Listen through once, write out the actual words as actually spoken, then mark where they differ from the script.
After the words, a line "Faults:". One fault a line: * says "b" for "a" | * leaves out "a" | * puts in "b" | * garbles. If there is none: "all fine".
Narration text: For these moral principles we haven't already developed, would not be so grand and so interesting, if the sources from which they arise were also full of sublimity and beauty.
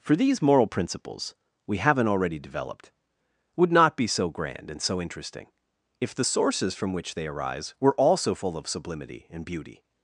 For these moral principles we haven't already developed, would not be so grand and so interesting, if the sources from which they arise were also full of sublimity and beauty.
Faults:
all fine